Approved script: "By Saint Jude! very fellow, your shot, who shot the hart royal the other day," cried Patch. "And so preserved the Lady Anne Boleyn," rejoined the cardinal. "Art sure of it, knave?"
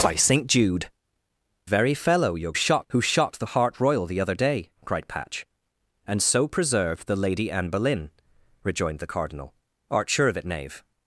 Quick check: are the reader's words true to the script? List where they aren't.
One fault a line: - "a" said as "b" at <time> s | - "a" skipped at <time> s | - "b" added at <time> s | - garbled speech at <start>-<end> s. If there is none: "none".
none